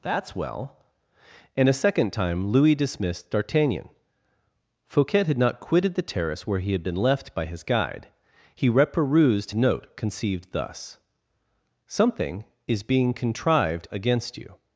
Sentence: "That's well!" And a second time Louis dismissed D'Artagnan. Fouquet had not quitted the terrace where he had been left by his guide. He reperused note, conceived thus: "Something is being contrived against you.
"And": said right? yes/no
yes